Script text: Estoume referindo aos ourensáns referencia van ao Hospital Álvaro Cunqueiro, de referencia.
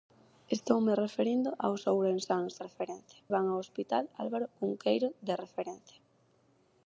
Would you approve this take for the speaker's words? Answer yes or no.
yes